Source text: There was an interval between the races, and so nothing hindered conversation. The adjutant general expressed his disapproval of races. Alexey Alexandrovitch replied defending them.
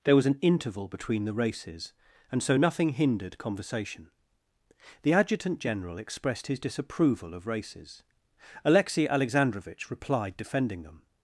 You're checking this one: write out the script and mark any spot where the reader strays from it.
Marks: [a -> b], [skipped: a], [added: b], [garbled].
There was an interval between the races, and so nothing hindered conversation. The adjutant general expressed his disapproval of races. Alexey Alexandrovitch replied defending them.